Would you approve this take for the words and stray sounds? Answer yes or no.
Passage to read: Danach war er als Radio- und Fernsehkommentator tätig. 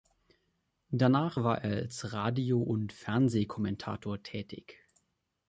yes